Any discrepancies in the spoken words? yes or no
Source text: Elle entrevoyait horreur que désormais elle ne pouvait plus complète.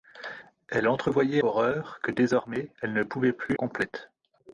no